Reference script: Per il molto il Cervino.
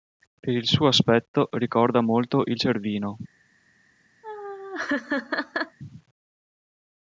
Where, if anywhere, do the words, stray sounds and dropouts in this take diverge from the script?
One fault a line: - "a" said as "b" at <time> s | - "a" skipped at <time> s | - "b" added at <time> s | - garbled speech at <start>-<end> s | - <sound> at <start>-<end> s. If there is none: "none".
- "suo aspetto ricorda" added at 0.7 s
- laugh at 4.2-5.8 s